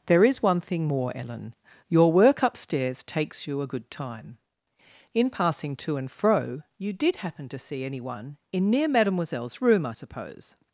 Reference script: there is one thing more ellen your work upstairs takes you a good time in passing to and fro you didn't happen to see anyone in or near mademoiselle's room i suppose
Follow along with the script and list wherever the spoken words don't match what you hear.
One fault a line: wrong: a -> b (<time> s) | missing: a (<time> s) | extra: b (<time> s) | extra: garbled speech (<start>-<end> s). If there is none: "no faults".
wrong: didn't -> did (6.9 s)
missing: or (8.7 s)